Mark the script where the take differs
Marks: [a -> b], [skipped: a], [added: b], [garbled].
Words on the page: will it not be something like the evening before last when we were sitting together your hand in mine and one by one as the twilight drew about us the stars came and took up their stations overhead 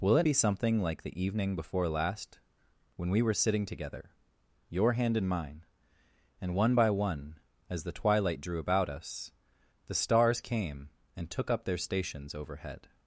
will it [skipped: not] be something like the evening before last when we were sitting together your hand in mine and one by one as the twilight drew about us the stars came and took up their stations overhead